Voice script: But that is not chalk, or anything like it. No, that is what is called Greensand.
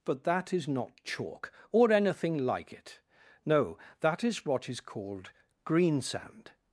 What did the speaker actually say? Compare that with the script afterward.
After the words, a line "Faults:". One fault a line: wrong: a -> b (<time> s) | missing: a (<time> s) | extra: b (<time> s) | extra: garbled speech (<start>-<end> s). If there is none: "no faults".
But that is not chalk, or anything like it. No, that is what is called Greensand.
Faults:
no faults